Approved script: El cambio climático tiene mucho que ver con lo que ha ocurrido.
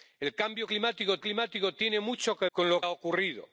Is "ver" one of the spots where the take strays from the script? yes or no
yes